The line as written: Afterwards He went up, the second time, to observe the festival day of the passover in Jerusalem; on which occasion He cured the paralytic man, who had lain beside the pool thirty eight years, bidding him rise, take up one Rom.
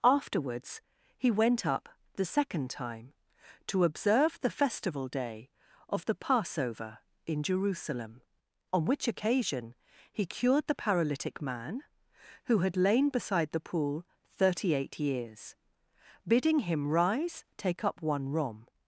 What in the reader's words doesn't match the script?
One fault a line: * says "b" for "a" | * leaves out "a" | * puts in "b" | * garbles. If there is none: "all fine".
all fine